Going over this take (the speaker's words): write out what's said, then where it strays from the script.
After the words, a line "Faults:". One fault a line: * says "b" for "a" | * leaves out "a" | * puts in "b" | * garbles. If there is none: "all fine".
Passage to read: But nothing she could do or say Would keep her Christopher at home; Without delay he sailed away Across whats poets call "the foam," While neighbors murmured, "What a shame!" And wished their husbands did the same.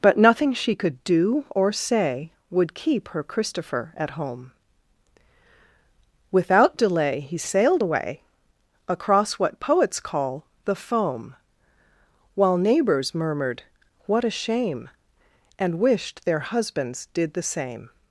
But nothing she could do or say Would keep her Christopher at home; Without delay he sailed away Across what poets call "the foam," While neighbors murmured, "What a shame!" And wished their husbands did the same.
Faults:
* says "what" for "whats"